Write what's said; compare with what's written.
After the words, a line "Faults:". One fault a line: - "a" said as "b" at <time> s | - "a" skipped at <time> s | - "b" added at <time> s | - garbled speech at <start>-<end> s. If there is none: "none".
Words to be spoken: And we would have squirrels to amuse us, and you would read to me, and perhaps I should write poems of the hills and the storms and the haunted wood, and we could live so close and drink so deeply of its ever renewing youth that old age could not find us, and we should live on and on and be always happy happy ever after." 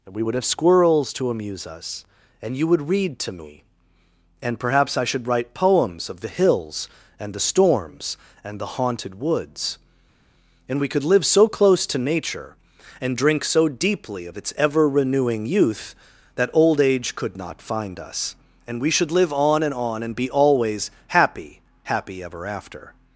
And we would have squirrels to amuse us, and you would read to me, and perhaps I should write poems of the hills and the storms and the haunted woods, and we could live so close to nature and drink so deeply of its ever renewing youth that old age could not find us, and we should live on and on and be always happy happy ever after."
Faults:
- "wood" said as "woods" at 9.2 s
- "to nature" added at 11.9 s